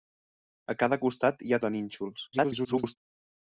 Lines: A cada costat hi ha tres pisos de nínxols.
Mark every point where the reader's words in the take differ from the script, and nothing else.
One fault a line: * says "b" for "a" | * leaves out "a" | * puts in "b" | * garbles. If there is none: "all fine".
* leaves out "tres pisos"
* garbles